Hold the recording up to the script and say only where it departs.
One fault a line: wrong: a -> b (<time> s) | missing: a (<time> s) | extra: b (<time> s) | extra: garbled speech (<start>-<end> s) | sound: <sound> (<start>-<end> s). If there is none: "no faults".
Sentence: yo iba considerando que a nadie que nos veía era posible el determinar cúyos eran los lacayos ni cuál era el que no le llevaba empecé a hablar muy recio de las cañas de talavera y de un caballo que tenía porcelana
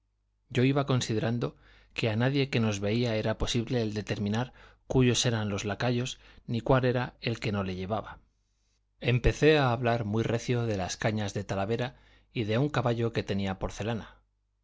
no faults